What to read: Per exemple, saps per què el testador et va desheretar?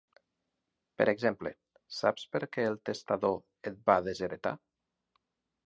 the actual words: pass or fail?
pass